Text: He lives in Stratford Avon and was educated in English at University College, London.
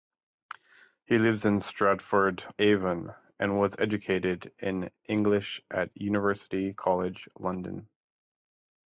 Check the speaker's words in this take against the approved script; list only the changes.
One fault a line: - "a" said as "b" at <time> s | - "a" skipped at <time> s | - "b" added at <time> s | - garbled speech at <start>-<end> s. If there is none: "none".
none